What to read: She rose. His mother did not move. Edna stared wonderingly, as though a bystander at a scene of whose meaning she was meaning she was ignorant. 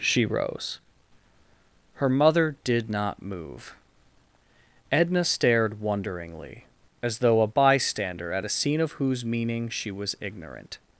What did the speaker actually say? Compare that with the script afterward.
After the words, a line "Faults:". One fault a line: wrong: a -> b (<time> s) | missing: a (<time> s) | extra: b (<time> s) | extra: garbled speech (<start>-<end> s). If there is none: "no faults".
She rose. Her mother did not move. Edna stared wonderingly, as though a bystander at a scene of whose meaning she was ignorant.
Faults:
wrong: His -> Her (1.9 s)
missing: meaning she was (10.1 s)